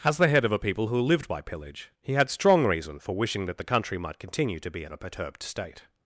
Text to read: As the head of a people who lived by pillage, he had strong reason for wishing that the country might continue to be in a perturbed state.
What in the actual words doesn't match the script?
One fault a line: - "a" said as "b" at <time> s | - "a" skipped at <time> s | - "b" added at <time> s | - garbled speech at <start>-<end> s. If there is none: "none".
none